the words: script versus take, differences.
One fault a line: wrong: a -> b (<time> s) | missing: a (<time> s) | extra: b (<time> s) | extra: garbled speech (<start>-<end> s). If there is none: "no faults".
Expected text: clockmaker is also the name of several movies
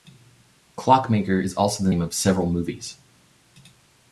no faults